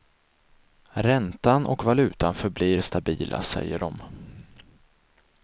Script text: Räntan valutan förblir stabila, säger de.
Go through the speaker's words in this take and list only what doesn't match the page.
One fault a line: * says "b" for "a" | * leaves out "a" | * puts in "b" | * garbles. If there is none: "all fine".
* puts in "och"